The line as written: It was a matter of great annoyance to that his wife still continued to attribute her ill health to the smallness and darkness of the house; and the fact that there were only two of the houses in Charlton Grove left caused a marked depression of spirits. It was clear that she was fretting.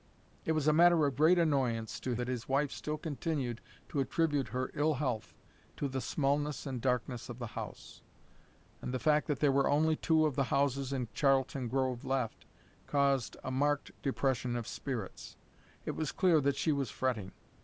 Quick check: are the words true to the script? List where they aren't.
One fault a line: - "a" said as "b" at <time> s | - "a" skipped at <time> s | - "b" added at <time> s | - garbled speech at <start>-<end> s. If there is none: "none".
none